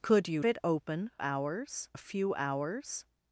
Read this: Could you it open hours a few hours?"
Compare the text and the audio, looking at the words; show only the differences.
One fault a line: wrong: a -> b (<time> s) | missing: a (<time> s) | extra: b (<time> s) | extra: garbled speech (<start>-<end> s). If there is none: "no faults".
no faults